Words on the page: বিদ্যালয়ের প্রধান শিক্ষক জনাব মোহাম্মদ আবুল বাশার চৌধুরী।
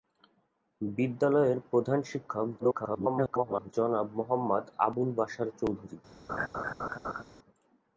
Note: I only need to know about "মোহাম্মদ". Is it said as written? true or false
true